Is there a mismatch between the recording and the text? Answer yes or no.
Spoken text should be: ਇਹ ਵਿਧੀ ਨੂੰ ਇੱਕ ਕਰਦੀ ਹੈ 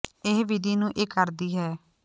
no